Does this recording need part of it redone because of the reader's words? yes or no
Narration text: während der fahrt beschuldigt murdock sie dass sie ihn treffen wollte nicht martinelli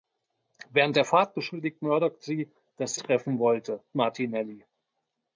yes